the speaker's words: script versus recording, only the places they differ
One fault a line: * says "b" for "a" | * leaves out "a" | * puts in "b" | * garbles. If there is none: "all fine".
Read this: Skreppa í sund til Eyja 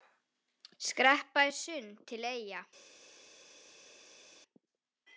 all fine